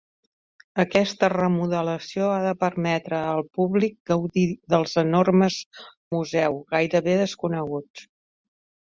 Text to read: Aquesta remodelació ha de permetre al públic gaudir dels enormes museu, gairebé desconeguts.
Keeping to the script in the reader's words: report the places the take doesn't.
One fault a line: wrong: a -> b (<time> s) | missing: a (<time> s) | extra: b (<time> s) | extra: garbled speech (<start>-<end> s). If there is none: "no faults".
no faults